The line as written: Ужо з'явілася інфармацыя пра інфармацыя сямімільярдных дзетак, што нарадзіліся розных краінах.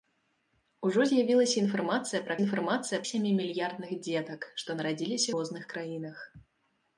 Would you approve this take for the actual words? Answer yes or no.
yes